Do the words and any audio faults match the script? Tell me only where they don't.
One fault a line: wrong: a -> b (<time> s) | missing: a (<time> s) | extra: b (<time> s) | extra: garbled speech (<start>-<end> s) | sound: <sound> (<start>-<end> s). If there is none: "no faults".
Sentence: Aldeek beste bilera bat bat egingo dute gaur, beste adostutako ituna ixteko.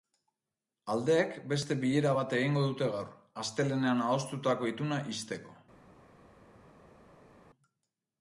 missing: bat (2.4 s)
wrong: beste -> astelehenean (3.4 s)